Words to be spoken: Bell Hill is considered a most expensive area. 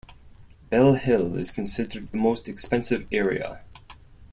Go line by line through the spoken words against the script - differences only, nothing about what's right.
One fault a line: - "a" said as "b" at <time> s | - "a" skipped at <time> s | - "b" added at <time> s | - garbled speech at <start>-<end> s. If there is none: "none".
- "a" said as "the" at 2.1 s